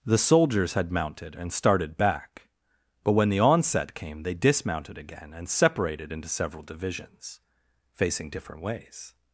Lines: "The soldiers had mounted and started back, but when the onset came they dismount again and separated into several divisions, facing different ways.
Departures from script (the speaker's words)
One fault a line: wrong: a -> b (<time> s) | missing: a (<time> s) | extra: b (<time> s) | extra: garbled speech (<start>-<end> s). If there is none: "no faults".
wrong: dismount -> dismounted (4.3 s)